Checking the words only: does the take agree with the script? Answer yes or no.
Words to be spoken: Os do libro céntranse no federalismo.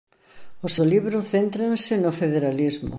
yes